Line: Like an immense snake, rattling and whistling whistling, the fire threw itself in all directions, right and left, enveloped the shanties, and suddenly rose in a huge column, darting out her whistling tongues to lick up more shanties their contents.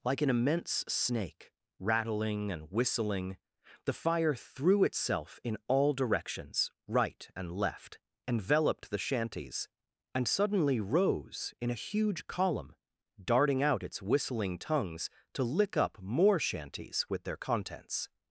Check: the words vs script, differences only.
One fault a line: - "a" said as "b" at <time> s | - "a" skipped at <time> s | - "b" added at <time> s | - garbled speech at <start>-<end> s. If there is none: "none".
- "whistling" skipped at 3.4 s
- "her" said as "its" at 13.8 s
- "with" added at 17.1 s